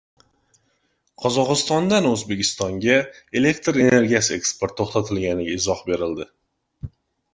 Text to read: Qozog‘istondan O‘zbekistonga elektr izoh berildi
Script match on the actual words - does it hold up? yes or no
no